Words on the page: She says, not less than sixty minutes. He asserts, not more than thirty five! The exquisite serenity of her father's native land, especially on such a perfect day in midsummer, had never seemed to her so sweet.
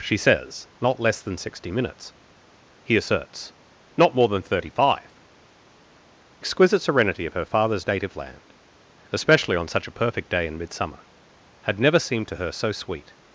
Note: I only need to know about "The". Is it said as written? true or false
false